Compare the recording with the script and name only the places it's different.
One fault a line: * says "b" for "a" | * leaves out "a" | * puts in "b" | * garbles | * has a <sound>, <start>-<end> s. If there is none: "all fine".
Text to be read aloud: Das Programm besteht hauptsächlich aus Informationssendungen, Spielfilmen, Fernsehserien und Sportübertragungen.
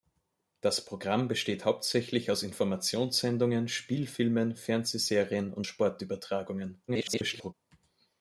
* garbles